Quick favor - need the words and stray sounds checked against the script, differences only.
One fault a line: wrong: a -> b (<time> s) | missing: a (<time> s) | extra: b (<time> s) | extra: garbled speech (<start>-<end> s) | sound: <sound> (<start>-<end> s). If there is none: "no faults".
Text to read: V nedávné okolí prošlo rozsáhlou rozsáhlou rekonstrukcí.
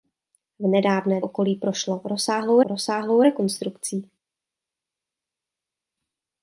no faults